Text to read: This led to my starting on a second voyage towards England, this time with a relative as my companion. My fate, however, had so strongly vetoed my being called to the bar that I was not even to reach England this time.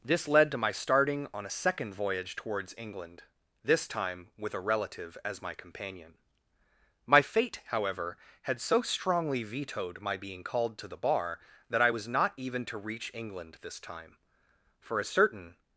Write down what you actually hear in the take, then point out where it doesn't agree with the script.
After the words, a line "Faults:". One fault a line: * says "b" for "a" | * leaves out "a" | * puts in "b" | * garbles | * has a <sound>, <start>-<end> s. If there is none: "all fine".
This led to my starting on a second voyage towards England, this time with a relative as my companion. My fate, however, had so strongly vetoed my being called to the bar that I was not even to reach England this time. For a certain
Faults:
* puts in "For a certain"